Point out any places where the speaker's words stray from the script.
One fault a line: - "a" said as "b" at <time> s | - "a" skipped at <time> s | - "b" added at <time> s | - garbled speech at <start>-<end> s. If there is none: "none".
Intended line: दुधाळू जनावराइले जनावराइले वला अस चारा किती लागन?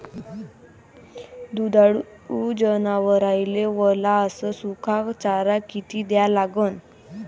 - "जनावराइले" skipped at 3.6 s
- "सुका" added at 4.5 s
- "द्या" added at 6.0 s